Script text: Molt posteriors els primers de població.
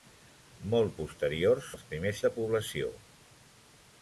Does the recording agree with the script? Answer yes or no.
yes